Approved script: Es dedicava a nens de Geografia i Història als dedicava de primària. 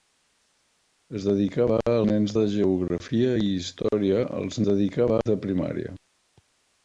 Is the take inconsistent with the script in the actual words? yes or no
no